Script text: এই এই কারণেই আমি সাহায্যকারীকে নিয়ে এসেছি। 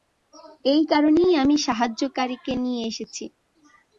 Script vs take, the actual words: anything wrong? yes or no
yes